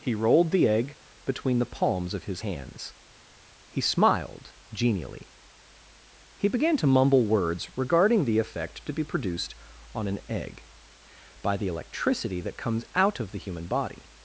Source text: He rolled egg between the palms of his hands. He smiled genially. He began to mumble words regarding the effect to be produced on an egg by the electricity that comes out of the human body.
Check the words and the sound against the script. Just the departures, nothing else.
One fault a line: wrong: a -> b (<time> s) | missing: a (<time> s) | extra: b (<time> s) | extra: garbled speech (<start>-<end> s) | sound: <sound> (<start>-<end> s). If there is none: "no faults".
extra: the (0.5 s)